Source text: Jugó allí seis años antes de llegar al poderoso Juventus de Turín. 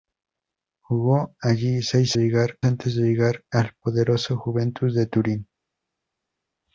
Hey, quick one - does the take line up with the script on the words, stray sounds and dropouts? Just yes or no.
no